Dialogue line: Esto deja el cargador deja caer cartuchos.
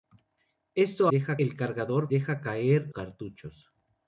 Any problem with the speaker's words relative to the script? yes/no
no